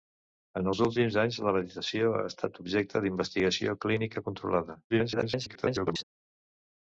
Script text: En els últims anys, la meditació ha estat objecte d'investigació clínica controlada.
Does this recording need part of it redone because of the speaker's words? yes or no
yes